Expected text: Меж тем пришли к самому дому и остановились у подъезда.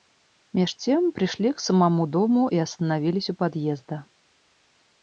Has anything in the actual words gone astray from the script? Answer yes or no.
no